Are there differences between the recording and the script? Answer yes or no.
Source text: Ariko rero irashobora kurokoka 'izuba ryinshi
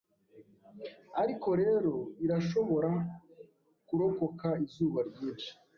no